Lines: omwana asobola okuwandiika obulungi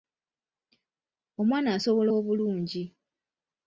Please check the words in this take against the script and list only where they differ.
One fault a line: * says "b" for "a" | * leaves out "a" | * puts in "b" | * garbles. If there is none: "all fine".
* leaves out "okuwandiika"